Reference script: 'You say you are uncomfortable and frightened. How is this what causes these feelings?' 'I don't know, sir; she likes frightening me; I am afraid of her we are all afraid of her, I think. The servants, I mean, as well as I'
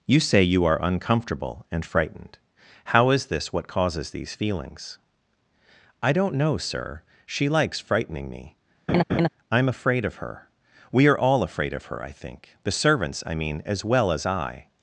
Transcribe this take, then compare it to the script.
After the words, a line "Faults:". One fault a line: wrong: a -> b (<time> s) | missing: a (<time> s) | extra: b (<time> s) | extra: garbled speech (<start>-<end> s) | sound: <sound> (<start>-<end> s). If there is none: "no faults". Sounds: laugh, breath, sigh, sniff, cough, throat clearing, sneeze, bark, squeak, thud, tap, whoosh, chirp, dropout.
'You say you are uncomfortable and frightened. How is this what causes these feelings?' 'I don't know, sir; she likes frightening me; I am afraid of her we are all afraid of her, I think. The servants, I mean, as well as I'
Faults:
sound: laugh (8.9-9.3 s)